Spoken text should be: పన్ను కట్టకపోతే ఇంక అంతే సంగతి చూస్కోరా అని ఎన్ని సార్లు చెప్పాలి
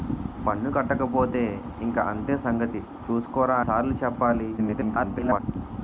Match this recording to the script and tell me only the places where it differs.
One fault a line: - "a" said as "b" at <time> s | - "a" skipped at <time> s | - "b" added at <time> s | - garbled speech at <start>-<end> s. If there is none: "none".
- "అని ఎన్ని" skipped at 3.6 s
- garbled speech at 4.6-5.4 s